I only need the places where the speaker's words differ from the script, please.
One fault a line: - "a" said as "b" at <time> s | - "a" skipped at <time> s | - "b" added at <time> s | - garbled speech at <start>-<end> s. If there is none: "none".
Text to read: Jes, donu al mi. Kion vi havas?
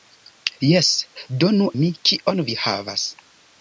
- "al" skipped at 1.7 s